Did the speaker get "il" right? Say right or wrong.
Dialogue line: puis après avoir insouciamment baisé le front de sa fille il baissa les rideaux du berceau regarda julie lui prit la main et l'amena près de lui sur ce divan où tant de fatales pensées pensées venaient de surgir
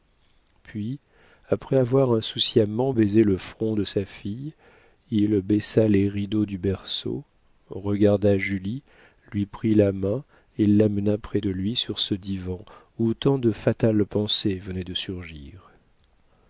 right